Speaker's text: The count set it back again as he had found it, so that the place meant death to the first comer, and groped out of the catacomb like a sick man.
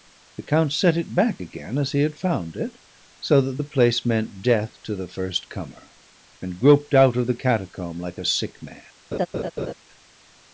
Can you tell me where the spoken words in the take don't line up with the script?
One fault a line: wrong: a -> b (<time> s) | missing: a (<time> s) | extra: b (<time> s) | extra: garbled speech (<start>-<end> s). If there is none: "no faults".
no faults